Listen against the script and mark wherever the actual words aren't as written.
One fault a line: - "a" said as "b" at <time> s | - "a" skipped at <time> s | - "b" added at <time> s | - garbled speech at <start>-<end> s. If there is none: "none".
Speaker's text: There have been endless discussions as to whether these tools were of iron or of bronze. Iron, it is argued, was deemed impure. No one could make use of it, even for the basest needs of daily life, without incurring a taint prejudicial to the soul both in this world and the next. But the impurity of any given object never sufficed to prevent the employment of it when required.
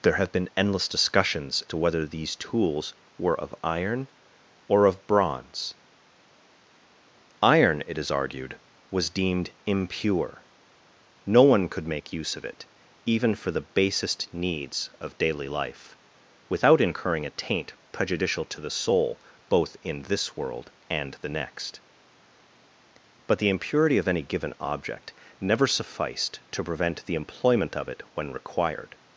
- "as" skipped at 1.6 s